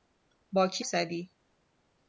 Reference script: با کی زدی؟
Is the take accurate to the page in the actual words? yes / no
yes